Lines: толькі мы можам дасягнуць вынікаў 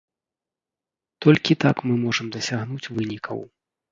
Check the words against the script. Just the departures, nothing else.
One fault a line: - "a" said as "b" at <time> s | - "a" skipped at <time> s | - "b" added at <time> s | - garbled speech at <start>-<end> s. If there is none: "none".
- "так" added at 1.6 s